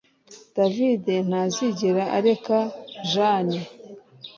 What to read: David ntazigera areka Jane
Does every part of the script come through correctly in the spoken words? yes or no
yes